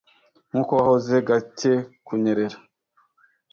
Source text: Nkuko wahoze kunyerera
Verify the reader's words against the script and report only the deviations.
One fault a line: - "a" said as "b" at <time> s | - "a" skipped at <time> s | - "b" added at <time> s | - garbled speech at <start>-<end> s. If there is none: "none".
- "gake" added at 1.3 s